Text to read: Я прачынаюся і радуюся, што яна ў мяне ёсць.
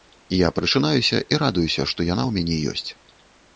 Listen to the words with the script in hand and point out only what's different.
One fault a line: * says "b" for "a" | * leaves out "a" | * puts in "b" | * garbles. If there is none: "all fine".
all fine